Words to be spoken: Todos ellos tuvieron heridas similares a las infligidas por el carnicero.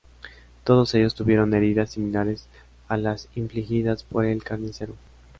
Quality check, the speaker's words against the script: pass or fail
pass